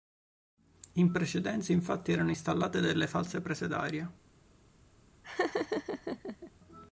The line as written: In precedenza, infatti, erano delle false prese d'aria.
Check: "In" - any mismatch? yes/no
no